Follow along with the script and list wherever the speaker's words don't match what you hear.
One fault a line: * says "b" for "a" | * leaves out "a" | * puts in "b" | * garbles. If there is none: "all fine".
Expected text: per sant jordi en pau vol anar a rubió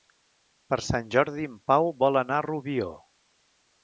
all fine